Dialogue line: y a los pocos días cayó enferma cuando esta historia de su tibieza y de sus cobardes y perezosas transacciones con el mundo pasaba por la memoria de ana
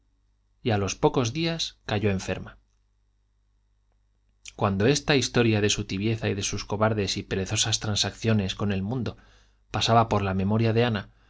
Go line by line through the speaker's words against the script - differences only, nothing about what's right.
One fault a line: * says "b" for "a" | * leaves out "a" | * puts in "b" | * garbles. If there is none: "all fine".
all fine